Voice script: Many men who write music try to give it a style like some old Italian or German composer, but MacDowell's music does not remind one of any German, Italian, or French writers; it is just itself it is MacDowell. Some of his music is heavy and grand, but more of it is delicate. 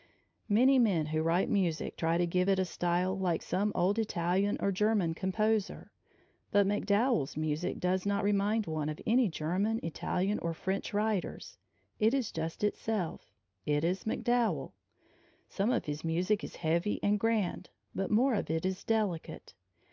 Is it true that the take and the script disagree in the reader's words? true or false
false